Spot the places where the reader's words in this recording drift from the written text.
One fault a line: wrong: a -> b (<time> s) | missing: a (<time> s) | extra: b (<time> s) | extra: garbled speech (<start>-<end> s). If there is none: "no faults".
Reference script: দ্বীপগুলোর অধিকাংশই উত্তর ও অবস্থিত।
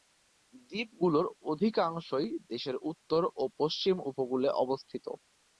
extra: দেশের (2.5 s)
extra: পশ্চিম উপকূলে (3.6 s)